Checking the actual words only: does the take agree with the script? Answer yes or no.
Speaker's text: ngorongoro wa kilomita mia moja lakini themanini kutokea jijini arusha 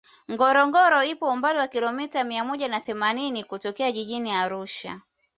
no